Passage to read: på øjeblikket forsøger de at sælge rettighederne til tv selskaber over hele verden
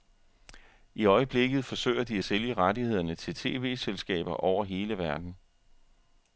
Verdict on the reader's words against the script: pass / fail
fail